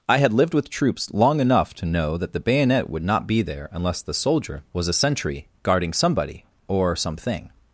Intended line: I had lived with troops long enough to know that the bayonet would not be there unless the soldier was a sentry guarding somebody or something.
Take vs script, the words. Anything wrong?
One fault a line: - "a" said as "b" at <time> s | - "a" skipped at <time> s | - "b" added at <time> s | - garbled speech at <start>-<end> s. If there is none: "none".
none